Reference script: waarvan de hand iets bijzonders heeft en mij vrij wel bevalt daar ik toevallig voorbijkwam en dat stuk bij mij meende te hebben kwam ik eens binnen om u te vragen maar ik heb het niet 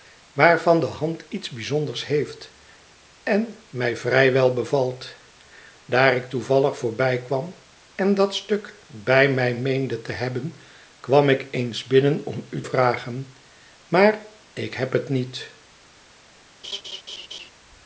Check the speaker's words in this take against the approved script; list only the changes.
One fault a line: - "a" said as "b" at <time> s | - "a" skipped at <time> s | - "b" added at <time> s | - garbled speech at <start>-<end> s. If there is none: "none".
- "te" skipped at 12.6 s